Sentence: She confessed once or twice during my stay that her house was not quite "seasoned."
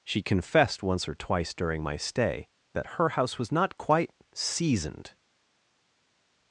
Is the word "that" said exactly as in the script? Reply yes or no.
yes